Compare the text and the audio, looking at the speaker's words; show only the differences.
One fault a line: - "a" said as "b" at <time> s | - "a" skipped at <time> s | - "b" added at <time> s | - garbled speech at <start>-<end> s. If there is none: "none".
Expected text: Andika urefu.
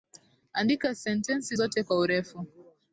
- "sentensi zote kwa" added at 0.9 s